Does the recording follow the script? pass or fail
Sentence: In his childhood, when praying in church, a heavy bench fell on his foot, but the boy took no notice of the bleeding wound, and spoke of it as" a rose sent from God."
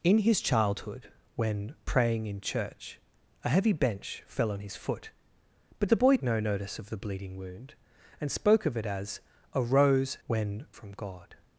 fail